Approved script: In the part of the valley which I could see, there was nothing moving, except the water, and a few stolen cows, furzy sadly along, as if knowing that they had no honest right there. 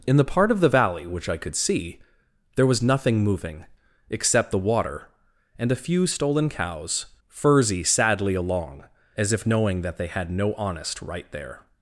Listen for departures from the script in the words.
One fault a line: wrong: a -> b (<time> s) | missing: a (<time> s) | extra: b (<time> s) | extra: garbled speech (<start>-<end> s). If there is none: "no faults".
no faults